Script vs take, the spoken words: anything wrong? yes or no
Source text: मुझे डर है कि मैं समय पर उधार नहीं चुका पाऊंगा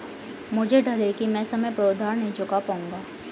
no